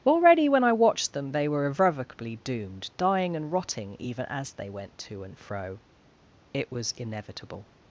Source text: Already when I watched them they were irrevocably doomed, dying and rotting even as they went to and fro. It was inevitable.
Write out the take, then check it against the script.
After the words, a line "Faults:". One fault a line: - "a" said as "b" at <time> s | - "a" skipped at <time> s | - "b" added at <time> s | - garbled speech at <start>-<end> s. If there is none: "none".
Already when I watched them they were irrevocably doomed, dying and rotting even as they went to and fro. It was inevitable.
Faults:
none